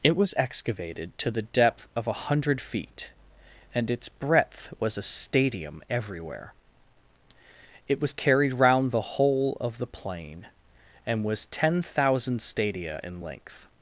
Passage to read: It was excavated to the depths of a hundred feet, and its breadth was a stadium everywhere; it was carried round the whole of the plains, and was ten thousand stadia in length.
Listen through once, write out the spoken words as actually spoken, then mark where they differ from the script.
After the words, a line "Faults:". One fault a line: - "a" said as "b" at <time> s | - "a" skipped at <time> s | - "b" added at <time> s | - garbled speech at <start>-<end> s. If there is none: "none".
It was excavated to the depth of a hundred feet, and its breadth was a stadium everywhere; it was carried round the whole of the plain, and was ten thousand stadia in length.
Faults:
- "depths" said as "depth" at 1.4 s
- "plains" said as "plain" at 9.9 s